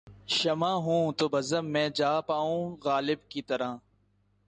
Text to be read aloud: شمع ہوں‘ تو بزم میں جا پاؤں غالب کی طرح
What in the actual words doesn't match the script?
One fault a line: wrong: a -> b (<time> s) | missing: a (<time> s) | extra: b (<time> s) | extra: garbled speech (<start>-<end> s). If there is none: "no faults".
no faults